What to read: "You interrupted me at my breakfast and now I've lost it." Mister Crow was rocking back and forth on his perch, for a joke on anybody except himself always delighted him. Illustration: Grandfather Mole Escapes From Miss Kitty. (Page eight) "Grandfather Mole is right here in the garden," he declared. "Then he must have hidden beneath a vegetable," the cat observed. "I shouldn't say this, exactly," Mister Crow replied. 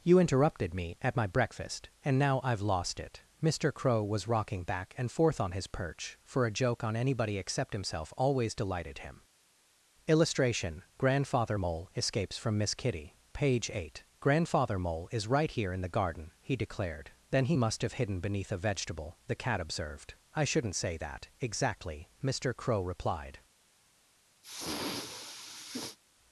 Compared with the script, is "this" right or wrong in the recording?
wrong